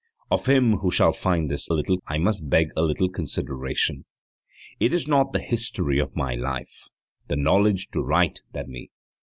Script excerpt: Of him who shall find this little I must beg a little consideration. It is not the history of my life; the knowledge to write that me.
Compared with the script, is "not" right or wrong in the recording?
right